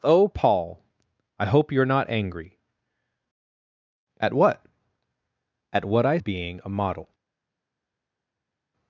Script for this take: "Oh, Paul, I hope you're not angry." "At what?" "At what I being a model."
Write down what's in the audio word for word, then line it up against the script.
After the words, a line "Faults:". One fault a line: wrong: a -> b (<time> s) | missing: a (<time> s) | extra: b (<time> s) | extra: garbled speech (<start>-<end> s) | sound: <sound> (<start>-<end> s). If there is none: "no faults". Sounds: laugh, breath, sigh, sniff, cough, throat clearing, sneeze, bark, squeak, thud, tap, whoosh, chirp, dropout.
"Oh, Paul, I hope you're not angry." "At what?" "At what I being a model."
Faults:
no faults